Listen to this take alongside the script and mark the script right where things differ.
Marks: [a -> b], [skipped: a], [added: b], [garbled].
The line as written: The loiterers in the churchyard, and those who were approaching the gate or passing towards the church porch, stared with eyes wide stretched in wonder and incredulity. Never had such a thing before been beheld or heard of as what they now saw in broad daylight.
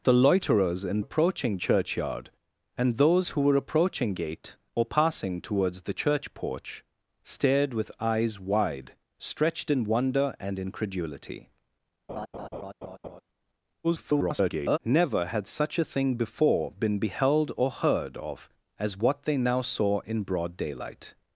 The loiterers in [the -> approaching] churchyard, and those who were approaching [skipped: the] gate or passing towards the church porch, stared with eyes wide stretched in wonder and incredulity. [garbled] Never had such a thing before been beheld or heard of as what they now saw in broad daylight.